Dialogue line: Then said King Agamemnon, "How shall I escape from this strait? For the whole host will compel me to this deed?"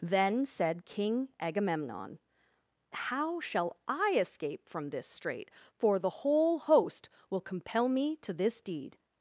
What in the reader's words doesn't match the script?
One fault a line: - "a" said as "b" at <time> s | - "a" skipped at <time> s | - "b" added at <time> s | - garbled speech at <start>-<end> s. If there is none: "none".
none